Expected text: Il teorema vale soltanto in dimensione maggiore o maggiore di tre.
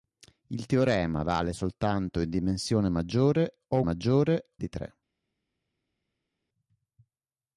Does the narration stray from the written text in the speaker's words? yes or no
no